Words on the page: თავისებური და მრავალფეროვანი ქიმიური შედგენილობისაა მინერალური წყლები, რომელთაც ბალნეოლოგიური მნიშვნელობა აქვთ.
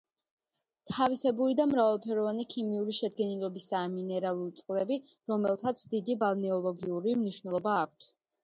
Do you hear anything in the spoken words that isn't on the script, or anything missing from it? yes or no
yes